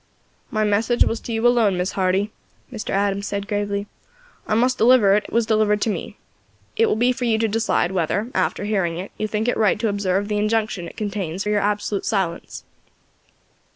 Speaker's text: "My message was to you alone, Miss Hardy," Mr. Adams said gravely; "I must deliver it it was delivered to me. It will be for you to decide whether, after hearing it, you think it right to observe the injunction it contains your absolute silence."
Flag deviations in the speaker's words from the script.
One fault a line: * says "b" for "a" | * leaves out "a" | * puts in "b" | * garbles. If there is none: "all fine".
all fine